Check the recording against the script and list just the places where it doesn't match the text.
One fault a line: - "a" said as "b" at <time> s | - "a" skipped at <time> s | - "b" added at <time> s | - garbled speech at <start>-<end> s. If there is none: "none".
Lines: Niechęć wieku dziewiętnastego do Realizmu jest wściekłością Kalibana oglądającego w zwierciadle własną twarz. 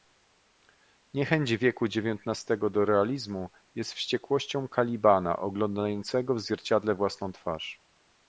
none